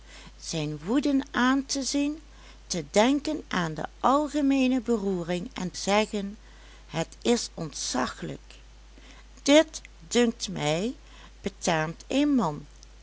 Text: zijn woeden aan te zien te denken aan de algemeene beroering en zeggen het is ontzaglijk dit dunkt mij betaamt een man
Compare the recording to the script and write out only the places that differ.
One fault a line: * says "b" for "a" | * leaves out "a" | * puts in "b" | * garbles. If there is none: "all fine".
all fine